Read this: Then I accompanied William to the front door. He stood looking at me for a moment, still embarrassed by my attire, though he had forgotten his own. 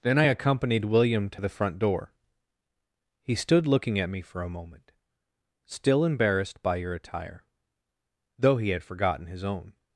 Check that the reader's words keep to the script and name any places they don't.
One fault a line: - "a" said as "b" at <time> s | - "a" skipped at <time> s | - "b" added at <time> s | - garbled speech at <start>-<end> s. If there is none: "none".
- "my" said as "your" at 6.8 s